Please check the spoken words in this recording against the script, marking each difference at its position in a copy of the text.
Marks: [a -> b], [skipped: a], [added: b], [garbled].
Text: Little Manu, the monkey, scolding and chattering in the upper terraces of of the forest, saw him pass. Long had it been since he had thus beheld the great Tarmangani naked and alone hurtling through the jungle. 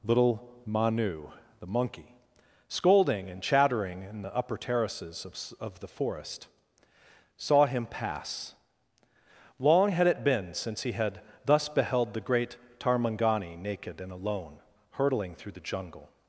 Little Manu, the monkey, scolding and chattering in the upper terraces of of the forest, saw him pass. Long had it been since he had thus beheld the great Tarmangani naked and alone hurtling through the jungle.